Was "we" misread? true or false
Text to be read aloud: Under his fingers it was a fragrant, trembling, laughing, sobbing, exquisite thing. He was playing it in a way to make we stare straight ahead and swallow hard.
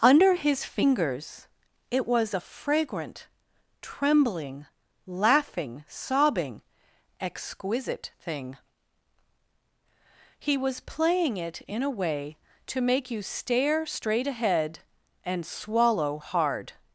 true